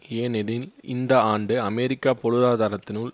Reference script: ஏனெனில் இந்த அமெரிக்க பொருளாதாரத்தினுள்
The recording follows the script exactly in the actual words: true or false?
false